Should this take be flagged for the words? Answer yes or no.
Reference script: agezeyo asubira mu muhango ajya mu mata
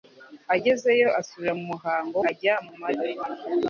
no